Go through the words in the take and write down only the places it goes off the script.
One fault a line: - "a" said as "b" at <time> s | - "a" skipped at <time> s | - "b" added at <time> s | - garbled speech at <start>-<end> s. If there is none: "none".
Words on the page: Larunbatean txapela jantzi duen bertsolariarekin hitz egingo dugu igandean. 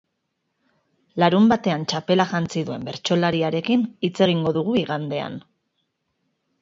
none